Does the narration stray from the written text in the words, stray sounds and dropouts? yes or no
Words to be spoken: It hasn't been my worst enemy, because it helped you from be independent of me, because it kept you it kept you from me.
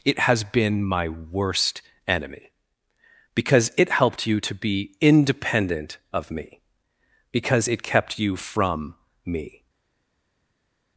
yes